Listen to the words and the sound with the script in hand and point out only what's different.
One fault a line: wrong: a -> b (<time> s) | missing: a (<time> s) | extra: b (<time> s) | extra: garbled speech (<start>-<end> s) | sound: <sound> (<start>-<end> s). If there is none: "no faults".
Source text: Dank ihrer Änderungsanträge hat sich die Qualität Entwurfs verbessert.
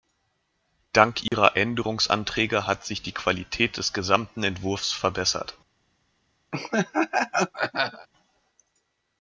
sound: dropout (1.3-1.3 s)
extra: des gesamten (3.8 s)
sound: laugh (6.5-8.1 s)